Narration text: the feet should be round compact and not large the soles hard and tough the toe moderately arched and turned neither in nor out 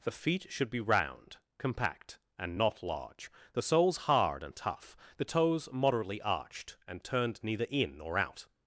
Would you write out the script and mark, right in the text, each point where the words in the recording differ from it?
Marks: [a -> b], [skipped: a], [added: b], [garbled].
the feet should be round compact and not large the soles hard and tough the [toe -> toes] moderately arched and turned neither in nor out